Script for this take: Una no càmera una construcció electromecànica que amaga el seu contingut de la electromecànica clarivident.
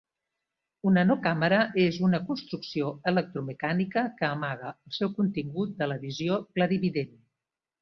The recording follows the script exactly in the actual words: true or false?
false